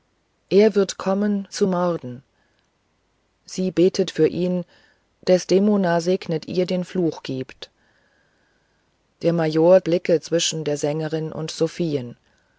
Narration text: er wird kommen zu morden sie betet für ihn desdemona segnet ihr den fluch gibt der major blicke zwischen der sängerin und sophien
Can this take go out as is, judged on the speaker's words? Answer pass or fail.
pass